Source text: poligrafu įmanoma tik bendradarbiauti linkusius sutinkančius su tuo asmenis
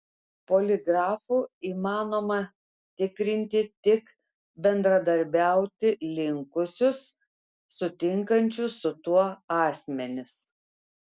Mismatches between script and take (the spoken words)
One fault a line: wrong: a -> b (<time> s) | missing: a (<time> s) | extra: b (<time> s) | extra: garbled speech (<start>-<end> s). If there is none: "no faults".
extra: tikrinti (3.0 s)